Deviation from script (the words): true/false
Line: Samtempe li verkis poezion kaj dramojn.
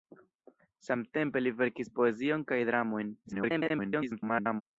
true